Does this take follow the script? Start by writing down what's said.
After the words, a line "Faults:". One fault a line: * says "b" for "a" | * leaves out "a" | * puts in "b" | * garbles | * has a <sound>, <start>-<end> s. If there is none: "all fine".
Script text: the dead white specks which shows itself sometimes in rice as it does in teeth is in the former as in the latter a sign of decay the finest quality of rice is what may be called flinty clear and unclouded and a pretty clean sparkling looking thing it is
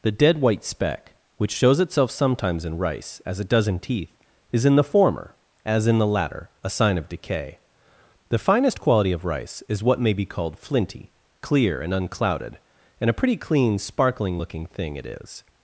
the dead white speck which shows itself sometimes in rice as it does in teeth is in the former as in the latter a sign of decay the finest quality of rice is what may be called flinty clear and unclouded and a pretty clean sparkling looking thing it is
Faults:
* says "speck" for "specks"